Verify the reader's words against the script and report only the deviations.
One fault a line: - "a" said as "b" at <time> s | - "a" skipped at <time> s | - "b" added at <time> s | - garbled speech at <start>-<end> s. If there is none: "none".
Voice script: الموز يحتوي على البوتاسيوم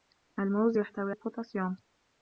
- "على" skipped at 1.1 s